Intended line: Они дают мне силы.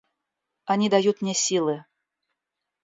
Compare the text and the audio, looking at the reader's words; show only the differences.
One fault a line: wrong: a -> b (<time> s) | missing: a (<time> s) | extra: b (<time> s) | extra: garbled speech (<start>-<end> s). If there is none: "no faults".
no faults